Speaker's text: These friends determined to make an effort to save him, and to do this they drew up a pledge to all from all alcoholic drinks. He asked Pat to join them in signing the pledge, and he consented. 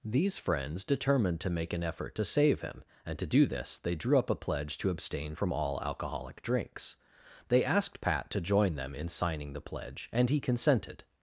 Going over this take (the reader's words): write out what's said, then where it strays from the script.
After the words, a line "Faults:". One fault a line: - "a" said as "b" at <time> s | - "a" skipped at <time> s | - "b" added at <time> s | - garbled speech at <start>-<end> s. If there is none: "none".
These friends determined to make an effort to save him, and to do this they drew up a pledge to abstain from all alcoholic drinks. They asked Pat to join them in signing the pledge, and he consented.
Faults:
- "all" said as "abstain" at 4.9 s
- "He" said as "They" at 7.5 s